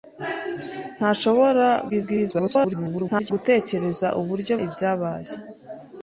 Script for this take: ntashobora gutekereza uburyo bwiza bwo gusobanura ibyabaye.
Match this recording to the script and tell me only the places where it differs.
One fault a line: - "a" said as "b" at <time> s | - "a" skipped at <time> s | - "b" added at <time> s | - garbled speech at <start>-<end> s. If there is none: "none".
- garbled speech at 1.9-3.3 s
- "bwiza bwo gusobanura" skipped at 4.5 s